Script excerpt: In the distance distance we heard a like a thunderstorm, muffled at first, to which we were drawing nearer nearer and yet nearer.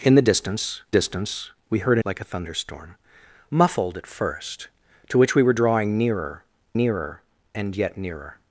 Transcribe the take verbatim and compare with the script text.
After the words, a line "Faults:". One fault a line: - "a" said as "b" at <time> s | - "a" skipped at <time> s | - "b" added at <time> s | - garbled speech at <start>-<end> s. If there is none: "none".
In the distance distance we heard a like a thunderstorm, muffled at first, to which we were drawing nearer nearer and yet nearer.
Faults:
none